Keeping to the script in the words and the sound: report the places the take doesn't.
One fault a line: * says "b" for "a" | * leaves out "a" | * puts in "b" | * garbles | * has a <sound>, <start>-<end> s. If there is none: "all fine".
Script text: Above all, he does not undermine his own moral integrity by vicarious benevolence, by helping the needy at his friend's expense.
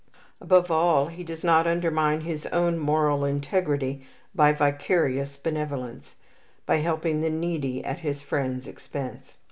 all fine